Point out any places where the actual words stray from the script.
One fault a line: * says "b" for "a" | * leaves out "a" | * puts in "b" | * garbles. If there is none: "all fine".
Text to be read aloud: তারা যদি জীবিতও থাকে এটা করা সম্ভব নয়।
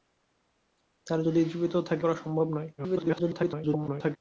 * leaves out "এটা"
* garbles